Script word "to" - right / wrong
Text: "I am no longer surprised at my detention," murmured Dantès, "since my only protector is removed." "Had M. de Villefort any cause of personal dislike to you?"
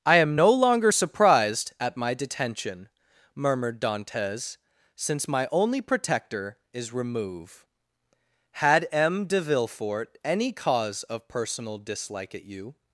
wrong